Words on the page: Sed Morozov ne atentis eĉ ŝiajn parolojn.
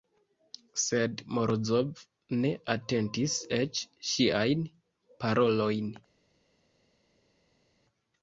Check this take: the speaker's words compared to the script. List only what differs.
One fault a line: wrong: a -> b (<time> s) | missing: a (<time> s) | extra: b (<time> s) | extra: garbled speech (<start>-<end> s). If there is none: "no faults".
no faults